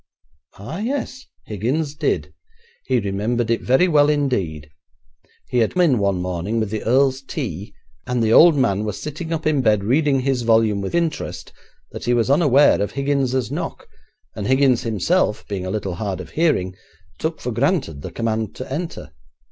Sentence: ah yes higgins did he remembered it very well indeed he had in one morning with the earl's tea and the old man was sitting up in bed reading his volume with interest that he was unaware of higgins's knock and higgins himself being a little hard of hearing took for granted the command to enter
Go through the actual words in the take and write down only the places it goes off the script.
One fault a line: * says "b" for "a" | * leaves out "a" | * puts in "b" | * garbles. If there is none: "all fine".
all fine